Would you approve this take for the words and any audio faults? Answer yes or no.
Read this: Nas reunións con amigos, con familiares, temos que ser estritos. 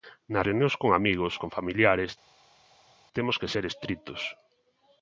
yes